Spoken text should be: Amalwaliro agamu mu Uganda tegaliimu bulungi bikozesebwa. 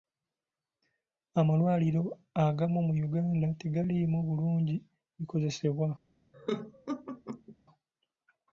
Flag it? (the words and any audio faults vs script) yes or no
yes